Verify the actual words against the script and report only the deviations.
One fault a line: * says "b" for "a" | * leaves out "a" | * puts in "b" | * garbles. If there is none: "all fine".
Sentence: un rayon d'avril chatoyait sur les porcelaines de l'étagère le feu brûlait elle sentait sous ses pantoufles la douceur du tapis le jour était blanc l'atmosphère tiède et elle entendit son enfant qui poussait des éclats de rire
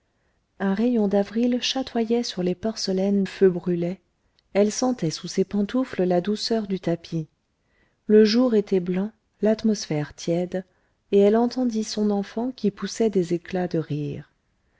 * leaves out "de l'étagère le"